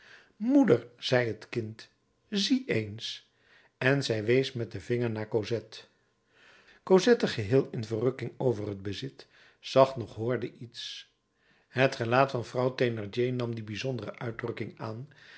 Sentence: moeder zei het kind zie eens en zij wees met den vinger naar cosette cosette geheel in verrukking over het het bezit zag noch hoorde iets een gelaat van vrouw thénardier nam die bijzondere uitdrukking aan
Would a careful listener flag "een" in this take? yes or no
yes